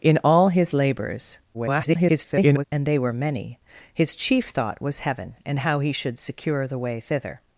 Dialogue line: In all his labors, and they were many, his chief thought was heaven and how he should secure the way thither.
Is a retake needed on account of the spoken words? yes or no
yes